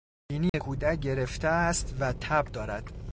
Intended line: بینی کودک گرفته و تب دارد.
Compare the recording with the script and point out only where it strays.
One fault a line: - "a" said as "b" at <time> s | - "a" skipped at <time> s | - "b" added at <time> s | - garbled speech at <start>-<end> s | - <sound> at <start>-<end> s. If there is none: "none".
- dropout at 0.5-0.5 s
- "است" added at 1.5 s